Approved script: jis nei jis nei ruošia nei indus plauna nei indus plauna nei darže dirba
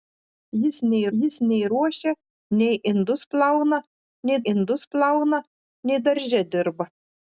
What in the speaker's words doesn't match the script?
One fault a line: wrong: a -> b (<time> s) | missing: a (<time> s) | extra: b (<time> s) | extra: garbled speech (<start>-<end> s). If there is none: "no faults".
no faults